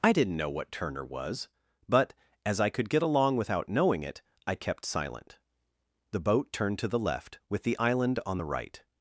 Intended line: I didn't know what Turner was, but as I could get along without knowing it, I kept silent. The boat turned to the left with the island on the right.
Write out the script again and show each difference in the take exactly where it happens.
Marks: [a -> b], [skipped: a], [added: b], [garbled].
I didn't know what Turner was, but as I could get along without knowing it, I kept silent. The boat turned to the left with the island on the right.